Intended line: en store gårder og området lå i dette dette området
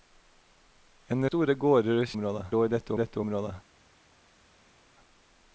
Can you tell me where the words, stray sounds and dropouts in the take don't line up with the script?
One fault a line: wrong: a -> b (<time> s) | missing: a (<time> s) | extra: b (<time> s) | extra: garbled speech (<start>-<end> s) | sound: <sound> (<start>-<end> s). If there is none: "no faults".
no faults